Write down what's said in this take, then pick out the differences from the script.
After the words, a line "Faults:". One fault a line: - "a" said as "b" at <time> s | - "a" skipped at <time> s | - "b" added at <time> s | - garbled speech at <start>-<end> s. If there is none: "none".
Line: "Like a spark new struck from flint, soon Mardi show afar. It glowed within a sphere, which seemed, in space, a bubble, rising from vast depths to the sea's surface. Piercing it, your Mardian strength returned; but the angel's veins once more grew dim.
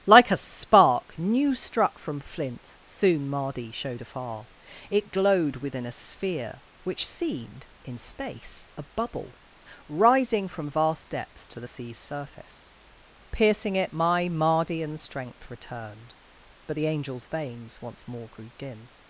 "Like a spark new struck from flint, soon Mardi showed afar. It glowed within a sphere, which seemed, in space, a bubble, rising from vast depths to the sea's surface. Piercing it, my Mardian strength returned; but the angel's veins once more grew dim.
Faults:
- "show" said as "showed" at 3.7 s
- "your" said as "my" at 13.9 s